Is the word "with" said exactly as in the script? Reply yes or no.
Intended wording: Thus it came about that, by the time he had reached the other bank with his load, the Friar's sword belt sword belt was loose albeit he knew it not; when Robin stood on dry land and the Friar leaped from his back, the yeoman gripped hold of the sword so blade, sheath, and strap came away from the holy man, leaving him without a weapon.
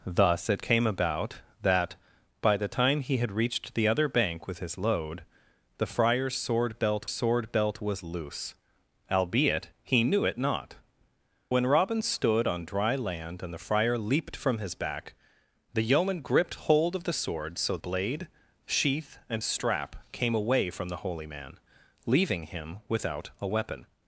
yes